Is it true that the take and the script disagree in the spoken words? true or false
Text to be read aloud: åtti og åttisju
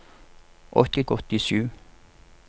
false